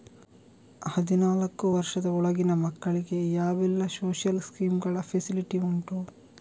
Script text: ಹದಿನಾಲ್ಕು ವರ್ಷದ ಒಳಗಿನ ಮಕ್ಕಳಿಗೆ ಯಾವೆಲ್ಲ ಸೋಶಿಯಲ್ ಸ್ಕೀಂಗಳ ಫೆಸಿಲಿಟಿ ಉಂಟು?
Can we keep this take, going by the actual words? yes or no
yes